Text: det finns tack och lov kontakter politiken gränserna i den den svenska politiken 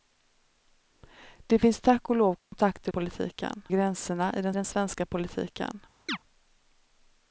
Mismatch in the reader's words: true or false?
false